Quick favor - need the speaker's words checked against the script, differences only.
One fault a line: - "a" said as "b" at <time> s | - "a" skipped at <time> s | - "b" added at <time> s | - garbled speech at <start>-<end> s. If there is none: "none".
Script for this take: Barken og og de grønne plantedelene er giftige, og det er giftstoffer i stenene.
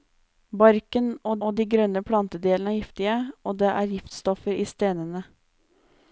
none